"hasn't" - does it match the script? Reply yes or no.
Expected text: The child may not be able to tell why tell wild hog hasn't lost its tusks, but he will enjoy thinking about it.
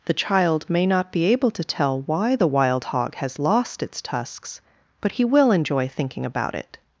no